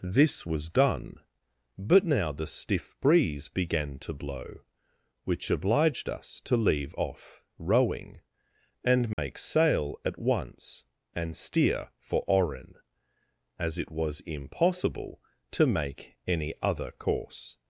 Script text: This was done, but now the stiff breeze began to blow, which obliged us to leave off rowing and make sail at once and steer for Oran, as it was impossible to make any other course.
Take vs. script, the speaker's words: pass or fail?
pass